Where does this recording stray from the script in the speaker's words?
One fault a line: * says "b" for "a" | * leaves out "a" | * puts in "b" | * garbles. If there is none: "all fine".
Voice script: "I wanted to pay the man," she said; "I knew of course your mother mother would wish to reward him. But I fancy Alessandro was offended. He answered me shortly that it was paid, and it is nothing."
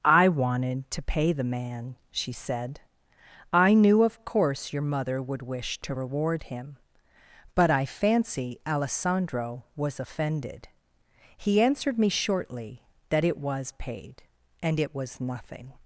* leaves out "mother"
* says "was" for "is"